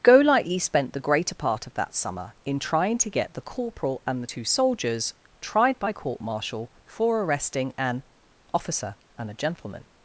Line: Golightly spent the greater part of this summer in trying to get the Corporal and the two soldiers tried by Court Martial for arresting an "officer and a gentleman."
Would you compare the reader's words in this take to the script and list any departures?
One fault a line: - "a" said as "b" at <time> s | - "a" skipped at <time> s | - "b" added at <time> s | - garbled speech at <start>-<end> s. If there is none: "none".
- "this" said as "that" at 1.8 s